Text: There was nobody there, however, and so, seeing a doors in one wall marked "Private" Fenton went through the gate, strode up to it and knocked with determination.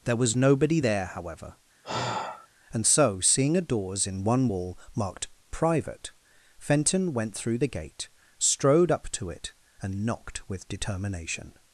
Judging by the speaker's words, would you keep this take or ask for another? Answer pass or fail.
pass